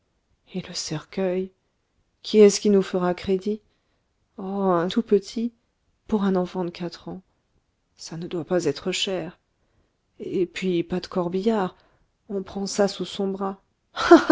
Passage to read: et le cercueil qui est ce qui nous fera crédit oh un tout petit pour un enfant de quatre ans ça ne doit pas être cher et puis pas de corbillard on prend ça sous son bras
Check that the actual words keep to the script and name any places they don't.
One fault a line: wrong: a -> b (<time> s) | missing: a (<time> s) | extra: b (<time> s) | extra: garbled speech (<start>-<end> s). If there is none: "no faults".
no faults